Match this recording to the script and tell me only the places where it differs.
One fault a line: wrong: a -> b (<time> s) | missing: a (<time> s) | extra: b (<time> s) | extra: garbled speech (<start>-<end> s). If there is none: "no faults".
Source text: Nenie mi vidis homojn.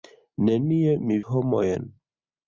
missing: vidis (1.2 s)